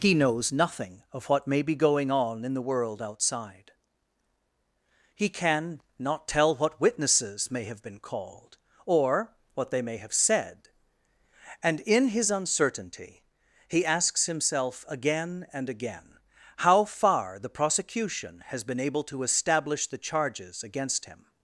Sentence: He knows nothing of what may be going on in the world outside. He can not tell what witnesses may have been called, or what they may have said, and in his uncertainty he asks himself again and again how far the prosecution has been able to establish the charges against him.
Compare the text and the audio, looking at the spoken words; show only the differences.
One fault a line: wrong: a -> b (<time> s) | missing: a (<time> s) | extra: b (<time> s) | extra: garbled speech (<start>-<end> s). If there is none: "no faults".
no faults